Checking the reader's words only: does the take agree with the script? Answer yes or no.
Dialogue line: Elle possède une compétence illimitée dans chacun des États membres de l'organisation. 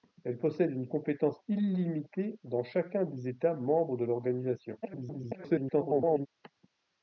no